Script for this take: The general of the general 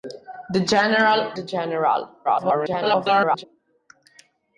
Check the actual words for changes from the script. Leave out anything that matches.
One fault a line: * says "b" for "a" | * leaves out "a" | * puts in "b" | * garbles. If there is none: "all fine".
* leaves out "of"
* garbles